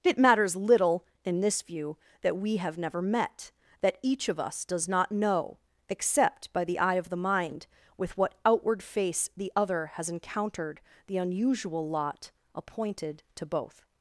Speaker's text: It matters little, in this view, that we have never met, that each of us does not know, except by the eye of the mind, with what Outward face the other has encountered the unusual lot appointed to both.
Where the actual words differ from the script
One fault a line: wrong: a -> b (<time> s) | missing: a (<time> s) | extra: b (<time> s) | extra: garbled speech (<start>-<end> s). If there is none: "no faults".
no faults